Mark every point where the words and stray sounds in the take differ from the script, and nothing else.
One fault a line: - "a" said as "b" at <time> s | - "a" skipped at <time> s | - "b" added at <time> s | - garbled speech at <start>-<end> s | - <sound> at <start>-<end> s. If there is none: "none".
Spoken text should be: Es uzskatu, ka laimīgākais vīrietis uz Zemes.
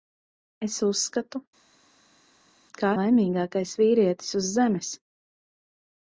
none